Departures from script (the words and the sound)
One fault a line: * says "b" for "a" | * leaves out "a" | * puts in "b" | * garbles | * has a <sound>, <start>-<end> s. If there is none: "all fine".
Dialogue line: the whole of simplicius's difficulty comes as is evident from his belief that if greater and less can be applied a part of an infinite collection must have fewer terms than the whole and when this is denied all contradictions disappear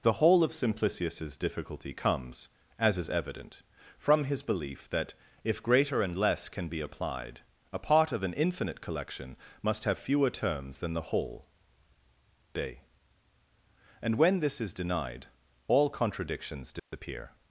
* puts in "day"
* has a dropout, 16.8-16.9 s